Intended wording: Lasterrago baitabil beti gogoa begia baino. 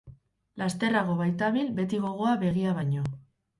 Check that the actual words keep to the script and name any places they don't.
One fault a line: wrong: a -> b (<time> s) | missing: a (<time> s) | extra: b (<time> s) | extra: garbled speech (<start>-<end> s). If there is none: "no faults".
no faults